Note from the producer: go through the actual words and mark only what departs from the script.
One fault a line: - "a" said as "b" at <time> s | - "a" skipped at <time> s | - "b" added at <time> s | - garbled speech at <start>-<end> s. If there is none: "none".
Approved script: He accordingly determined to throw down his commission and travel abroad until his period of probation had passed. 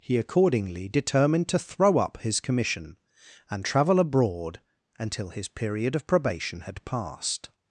- "down" said as "up" at 2.0 s